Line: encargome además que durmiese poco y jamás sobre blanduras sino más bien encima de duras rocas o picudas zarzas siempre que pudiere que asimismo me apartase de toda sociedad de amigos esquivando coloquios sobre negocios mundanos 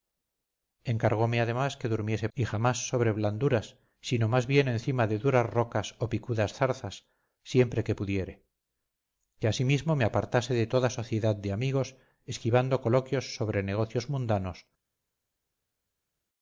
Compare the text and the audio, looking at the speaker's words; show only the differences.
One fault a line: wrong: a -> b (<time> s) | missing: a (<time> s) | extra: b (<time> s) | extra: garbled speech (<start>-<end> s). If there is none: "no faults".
missing: poco (2.3 s)